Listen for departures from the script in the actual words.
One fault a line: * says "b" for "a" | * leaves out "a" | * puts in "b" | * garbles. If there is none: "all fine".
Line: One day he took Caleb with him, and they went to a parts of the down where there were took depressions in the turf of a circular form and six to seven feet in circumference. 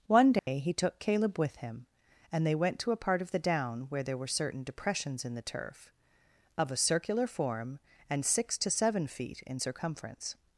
* says "part" for "parts"
* says "certain" for "took"